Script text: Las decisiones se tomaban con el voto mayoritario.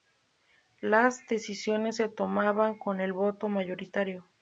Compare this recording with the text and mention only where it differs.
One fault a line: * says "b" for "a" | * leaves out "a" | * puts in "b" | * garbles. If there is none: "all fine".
all fine